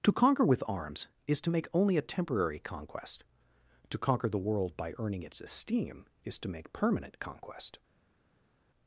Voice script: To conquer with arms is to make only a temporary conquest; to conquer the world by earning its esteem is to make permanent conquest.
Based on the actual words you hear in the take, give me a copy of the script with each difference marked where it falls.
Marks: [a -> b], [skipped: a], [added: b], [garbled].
To conquer with arms is to make only a temporary conquest; to conquer the world by earning its esteem is to make permanent conquest.